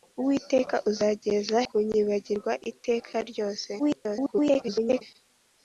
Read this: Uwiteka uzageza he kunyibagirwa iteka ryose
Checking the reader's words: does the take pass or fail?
fail